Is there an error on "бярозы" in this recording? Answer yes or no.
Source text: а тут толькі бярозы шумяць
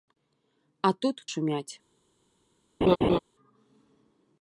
yes